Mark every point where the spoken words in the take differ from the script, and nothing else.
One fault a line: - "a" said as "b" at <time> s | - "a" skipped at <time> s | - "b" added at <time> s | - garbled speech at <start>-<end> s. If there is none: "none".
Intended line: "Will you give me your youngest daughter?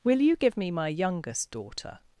- "your" said as "my" at 0.7 s